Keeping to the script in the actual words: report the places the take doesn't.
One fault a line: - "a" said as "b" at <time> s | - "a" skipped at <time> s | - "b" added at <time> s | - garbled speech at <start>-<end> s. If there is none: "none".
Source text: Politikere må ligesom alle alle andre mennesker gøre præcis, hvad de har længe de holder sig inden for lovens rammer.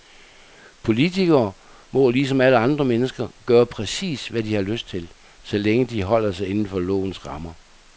- "alle" skipped at 2.6 s
- "lyst til så" added at 4.6 s